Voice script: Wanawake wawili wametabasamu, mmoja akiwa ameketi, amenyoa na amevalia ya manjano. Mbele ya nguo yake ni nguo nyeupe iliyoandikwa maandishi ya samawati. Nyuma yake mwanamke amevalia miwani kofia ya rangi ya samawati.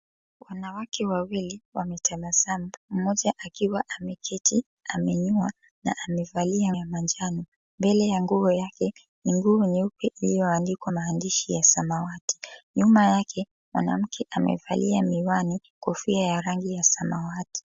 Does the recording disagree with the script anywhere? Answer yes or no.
no